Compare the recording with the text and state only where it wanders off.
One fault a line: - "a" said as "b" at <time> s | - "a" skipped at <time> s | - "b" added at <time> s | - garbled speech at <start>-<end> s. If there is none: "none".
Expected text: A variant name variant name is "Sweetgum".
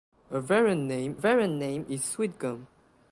none